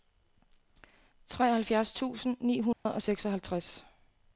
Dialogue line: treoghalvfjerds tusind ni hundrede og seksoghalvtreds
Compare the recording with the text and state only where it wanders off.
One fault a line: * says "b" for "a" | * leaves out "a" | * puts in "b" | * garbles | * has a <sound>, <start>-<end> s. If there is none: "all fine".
* has a dropout, 2.7-2.9 s